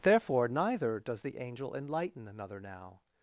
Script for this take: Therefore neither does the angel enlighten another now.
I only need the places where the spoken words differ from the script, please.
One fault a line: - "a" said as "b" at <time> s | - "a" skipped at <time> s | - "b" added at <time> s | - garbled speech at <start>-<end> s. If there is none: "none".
none